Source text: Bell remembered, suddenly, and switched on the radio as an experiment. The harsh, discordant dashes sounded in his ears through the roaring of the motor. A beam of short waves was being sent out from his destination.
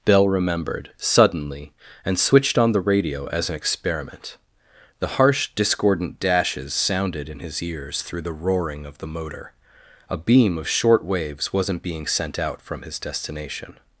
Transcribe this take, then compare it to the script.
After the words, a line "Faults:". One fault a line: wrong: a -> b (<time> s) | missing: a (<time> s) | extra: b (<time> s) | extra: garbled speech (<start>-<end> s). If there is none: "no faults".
Bell remembered, suddenly, and switched on the radio as an experiment. The harsh, discordant dashes sounded in his ears through the roaring of the motor. A beam of short waves wasn't being sent out from his destination.
Faults:
wrong: was -> wasn't (11.5 s)